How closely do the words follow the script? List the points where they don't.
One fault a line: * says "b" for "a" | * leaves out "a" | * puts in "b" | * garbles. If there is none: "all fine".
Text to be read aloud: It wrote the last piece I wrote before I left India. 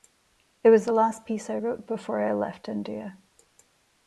* says "was" for "wrote"